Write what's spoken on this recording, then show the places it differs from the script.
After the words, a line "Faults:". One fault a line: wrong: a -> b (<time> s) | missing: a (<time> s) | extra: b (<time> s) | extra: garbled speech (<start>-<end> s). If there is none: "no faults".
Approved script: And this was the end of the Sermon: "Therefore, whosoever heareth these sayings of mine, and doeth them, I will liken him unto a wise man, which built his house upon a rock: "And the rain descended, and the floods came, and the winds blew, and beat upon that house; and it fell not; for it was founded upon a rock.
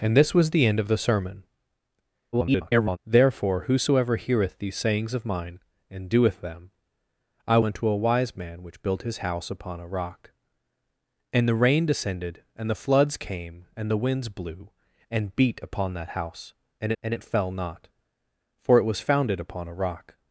And this was the end of the Sermon: [garbled] "Therefore, whosoever heareth these sayings of mine, and doeth them, I unto a wise man, which built his house upon a rock: "And the rain descended, and the floods came, and the winds blew, and beat upon that house; and and it fell not; for it was founded upon a rock.
Faults:
extra: garbled speech (2.3-3.0 s)
missing: will liken him (7.6 s)
extra: and (17.0 s)